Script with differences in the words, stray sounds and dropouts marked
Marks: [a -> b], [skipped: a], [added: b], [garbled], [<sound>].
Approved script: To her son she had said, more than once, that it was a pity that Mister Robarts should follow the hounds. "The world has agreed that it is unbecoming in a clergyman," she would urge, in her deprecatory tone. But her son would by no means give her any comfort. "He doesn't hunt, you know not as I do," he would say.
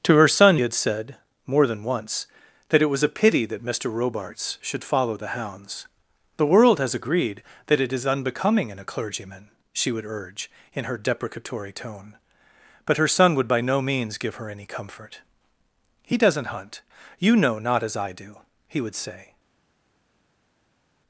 To her son [skipped: she] had said, more than once, that it was a pity that Mister Robarts should follow the hounds. "The world has agreed that it is unbecoming in a clergyman," she would urge, in her deprecatory tone. But her son would by no means give her any comfort. "He doesn't hunt, you know not as I do," he would say.